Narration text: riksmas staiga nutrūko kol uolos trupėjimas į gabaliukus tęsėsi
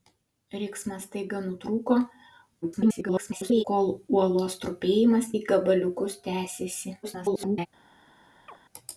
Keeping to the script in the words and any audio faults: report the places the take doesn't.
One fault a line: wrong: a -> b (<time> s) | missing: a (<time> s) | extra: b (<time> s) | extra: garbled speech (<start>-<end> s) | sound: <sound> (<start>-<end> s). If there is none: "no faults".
extra: garbled speech (2.6-3.6 s)
extra: garbled speech (7.0-7.7 s)
sound: chirp (8.5-8.6 s)